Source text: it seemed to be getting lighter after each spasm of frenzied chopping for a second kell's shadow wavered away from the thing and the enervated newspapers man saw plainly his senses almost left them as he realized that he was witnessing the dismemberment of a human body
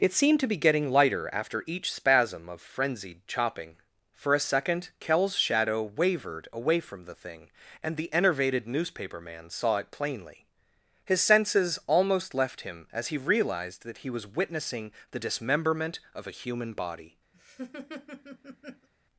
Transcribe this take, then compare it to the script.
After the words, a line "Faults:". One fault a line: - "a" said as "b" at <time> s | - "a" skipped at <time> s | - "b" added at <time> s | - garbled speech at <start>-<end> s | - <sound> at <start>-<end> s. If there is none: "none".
it seemed to be getting lighter after each spasm of frenzied chopping for a second kell's shadow wavered away from the thing and the enervated newspaper man saw it plainly his senses almost left him as he realized that he was witnessing the dismemberment of a human body
Faults:
- "newspapers" said as "newspaper" at 8.7 s
- "it" added at 9.8 s
- "them" said as "him" at 12.6 s
- laugh at 17.3-18.9 s